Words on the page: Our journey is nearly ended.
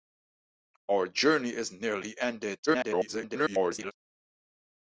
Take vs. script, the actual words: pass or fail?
fail